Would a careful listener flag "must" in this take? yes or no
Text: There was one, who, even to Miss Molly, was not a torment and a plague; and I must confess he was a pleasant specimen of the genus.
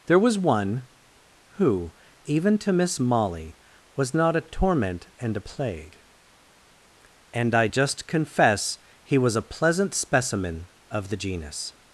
yes